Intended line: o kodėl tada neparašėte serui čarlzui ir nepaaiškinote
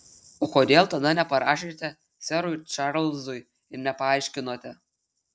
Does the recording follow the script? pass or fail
pass